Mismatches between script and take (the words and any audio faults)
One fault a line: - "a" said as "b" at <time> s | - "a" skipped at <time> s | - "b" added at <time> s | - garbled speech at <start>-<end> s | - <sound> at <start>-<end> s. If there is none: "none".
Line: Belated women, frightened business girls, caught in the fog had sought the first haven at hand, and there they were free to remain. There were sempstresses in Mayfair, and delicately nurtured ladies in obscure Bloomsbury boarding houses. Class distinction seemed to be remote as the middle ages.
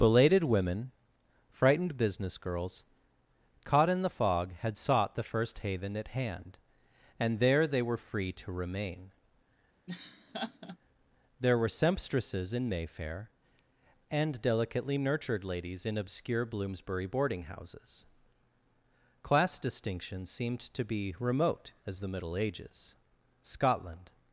- laugh at 9.9-10.8 s
- "Scotland" added at 23.4 s